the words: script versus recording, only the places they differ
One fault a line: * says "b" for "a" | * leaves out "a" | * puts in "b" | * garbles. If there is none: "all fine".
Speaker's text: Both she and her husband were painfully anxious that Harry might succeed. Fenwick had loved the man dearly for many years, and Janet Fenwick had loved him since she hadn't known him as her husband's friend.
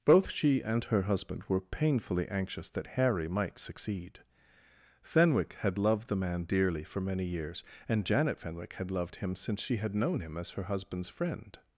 * says "had" for "hadn't"